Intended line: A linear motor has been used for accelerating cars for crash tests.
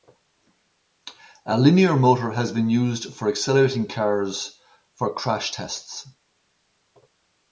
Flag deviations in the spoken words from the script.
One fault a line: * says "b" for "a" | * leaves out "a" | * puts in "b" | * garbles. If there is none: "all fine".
all fine